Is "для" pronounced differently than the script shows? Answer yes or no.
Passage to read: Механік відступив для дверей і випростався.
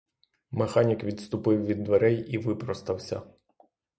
yes